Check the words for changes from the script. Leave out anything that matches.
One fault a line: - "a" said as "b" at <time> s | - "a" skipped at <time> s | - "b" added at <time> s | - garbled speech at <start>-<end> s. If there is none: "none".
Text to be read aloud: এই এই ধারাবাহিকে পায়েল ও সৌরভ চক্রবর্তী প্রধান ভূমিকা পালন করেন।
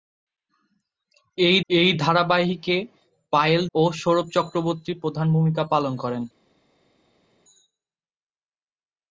none